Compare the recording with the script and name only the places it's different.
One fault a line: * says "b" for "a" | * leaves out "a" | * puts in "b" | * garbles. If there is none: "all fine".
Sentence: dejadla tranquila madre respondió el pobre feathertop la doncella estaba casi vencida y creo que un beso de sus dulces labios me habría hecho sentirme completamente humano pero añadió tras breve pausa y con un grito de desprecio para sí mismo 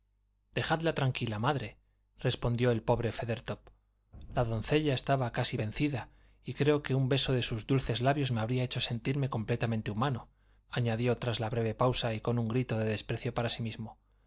* leaves out "pero"